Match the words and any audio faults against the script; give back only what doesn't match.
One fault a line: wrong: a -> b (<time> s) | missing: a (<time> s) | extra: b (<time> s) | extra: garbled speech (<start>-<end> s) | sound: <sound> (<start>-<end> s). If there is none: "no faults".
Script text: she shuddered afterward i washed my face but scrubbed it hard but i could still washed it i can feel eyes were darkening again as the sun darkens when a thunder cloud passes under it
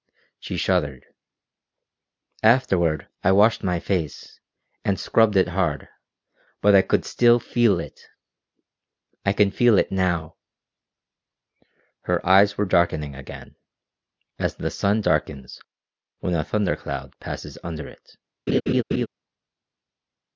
wrong: but -> and (4.8 s)
wrong: washed -> feel (7.4 s)
extra: it now her (9.8 s)
sound: laugh (18.5-19.1 s)